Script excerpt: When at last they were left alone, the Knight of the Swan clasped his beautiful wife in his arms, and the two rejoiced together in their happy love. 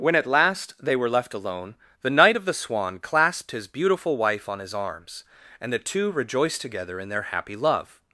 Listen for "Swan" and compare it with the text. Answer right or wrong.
right